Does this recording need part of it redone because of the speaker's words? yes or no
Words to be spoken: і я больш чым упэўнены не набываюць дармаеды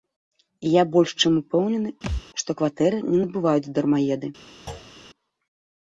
yes